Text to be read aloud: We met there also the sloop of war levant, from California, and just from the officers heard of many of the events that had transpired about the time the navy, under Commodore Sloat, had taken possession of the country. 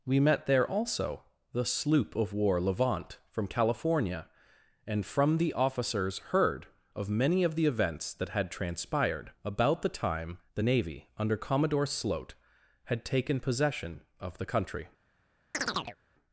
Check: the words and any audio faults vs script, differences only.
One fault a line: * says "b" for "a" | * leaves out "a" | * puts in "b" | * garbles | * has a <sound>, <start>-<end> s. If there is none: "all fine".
* leaves out "just"
* has a chirp, 15.5-16.0 s